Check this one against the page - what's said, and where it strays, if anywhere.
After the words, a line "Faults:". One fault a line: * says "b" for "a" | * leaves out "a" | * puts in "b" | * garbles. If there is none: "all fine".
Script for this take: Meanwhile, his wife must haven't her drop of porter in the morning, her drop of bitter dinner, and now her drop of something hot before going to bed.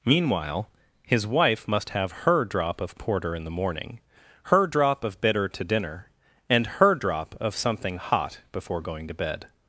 Meanwhile, his wife must have her drop of porter in the morning, her drop of bitter to dinner, and her drop of something hot before going to bed.
Faults:
* says "have" for "haven't"
* puts in "to"
* leaves out "now"